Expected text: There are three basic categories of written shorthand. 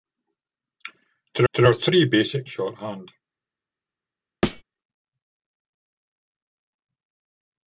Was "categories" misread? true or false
true